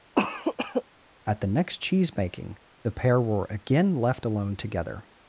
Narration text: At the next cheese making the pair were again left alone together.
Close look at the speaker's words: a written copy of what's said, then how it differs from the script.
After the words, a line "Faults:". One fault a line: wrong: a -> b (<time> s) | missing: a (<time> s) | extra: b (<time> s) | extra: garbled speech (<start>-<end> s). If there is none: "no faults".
At the next cheese making the pair were again left alone together.
Faults:
no faults